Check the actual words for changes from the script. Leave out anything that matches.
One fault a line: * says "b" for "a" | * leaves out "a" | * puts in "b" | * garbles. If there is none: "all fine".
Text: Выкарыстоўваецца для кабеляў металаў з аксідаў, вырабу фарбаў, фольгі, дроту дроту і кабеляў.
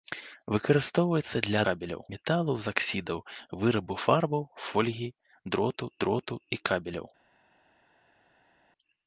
all fine